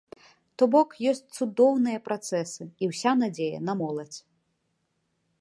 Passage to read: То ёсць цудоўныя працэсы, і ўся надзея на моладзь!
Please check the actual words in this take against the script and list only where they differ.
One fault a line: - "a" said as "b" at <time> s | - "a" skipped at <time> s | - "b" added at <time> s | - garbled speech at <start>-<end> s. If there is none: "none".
- "бок" added at 0.8 s